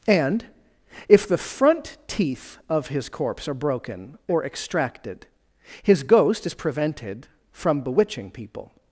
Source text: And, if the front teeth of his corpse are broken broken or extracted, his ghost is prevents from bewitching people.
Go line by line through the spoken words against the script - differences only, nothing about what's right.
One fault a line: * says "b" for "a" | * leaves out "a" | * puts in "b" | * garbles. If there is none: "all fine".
* leaves out "broken"
* says "prevented" for "prevents"